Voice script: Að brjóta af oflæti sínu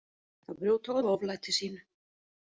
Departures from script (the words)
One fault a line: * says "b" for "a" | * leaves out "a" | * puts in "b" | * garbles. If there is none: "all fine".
all fine